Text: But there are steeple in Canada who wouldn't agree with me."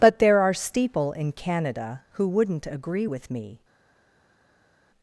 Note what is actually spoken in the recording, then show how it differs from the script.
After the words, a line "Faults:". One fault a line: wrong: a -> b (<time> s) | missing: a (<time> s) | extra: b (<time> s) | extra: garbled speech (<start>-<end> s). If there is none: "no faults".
But there are steeple in Canada who wouldn't agree with me."
Faults:
no faults